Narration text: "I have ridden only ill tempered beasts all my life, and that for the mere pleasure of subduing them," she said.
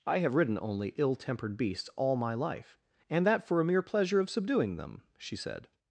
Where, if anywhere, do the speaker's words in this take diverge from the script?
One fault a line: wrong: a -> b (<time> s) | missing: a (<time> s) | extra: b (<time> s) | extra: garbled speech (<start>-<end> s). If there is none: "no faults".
wrong: the -> a (3.6 s)